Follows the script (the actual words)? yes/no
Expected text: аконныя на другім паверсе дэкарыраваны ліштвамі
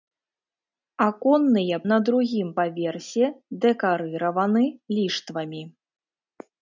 yes